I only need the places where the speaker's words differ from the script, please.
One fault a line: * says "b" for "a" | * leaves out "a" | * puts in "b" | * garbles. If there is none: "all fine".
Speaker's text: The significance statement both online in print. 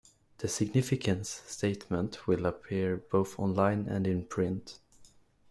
* puts in "will appear"
* puts in "and"